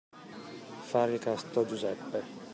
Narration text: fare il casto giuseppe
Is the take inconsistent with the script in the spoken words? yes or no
no